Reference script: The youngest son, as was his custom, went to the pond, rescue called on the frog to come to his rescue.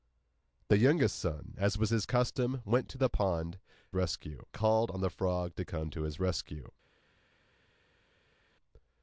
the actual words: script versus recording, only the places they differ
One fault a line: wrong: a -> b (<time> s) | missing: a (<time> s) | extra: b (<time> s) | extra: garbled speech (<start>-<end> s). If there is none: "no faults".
no faults